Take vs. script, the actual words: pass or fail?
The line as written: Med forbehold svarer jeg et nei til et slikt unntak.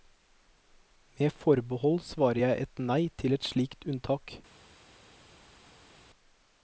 pass